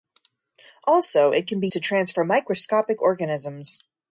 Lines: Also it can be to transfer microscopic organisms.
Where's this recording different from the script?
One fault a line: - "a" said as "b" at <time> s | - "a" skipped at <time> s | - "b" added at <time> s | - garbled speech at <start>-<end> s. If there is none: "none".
none